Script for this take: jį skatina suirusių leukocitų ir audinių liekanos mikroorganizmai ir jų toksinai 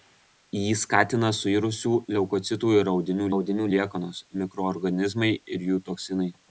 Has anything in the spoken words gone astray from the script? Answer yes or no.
yes